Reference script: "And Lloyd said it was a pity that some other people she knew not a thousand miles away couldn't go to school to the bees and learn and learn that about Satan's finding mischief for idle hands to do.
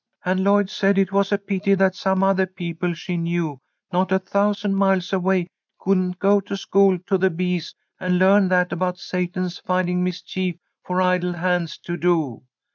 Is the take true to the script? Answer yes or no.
no